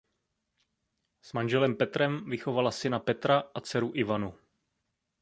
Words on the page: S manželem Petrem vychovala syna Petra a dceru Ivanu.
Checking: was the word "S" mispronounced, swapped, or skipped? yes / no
no